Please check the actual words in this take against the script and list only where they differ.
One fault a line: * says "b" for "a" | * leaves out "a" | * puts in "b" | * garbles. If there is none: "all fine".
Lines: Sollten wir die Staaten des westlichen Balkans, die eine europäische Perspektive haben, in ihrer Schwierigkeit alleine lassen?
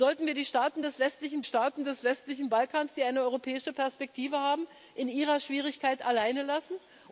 * puts in "Staaten des westlichen"